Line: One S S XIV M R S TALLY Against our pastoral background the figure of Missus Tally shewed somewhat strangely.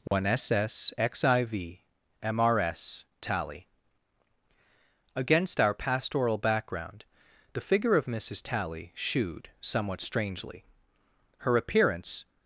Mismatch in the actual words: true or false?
true